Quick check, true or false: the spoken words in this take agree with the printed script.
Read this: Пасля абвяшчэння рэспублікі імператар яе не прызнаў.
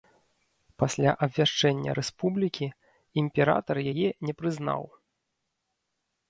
true